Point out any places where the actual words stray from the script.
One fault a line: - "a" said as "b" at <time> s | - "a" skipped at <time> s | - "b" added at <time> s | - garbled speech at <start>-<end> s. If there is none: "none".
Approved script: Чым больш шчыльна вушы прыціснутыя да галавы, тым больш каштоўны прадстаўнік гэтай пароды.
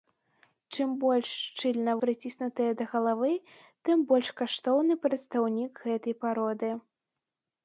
- "вушы" skipped at 1.9 s